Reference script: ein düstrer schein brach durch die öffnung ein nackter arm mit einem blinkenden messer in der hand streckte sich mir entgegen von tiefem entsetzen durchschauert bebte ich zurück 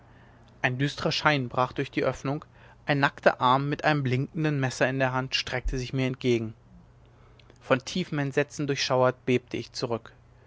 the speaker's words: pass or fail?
pass